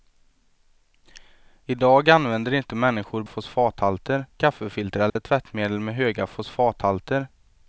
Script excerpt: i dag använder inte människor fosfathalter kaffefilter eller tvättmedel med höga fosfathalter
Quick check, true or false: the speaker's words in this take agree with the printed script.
true